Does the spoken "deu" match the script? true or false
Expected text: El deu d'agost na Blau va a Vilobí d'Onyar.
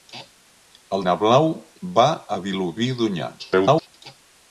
false